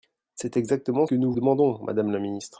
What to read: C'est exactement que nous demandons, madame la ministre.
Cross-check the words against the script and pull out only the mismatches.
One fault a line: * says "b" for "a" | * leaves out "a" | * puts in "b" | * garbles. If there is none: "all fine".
all fine